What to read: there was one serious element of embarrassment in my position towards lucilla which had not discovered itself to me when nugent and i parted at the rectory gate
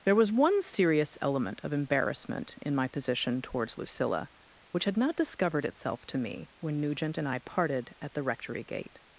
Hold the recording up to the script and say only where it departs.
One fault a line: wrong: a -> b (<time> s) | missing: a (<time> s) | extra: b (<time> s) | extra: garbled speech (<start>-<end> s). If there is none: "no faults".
no faults